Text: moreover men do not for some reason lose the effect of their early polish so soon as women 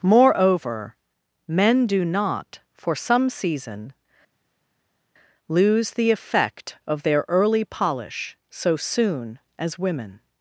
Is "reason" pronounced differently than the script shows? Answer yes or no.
yes